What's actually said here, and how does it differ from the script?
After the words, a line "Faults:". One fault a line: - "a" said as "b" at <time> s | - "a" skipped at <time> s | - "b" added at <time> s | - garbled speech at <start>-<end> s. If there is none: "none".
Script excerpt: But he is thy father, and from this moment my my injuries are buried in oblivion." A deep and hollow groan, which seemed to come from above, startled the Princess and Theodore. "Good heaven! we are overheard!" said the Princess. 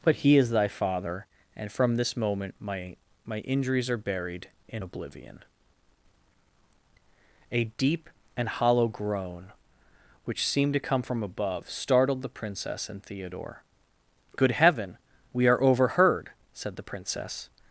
But he is thy father, and from this moment my my injuries are buried in oblivion." A deep and hollow groan, which seemed to come from above, startled the Princess and Theodore. "Good heaven! we are overheard!" said the Princess.
Faults:
none